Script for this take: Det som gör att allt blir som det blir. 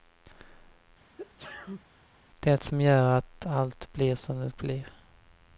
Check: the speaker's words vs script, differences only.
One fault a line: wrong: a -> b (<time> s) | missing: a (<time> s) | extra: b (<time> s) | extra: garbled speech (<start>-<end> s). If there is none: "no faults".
no faults